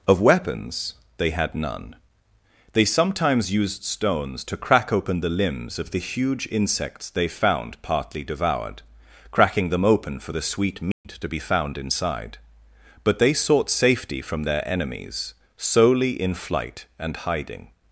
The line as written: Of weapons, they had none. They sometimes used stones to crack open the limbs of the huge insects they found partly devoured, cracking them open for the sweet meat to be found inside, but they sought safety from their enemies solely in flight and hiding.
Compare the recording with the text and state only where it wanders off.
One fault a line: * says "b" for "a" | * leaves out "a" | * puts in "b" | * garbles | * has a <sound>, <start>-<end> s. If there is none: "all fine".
* has a dropout, 10.9-11.0 s